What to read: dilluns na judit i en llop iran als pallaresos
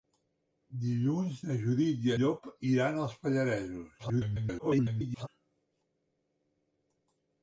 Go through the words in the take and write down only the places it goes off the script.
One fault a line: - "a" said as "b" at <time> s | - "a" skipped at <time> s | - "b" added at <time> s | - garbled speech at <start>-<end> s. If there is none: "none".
- "en" skipped at 2.1 s
- garbled speech at 4.0-5.3 s